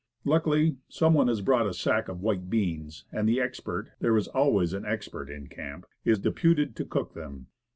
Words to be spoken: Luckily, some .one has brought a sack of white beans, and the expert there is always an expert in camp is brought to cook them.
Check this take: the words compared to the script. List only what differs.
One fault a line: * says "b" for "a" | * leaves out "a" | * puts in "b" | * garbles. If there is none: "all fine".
* says "deputed" for "brought"